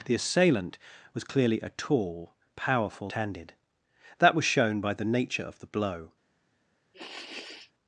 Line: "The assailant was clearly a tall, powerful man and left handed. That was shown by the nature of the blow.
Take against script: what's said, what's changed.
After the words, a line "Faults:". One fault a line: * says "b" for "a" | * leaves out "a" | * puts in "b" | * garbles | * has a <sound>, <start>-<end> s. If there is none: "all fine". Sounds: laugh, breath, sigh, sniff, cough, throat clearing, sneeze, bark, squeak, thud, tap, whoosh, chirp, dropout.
"The assailant was clearly a tall, powerful handed. That was shown by the nature of the blow.
Faults:
* leaves out "man and left"
* has a sniff, 6.9-7.7 s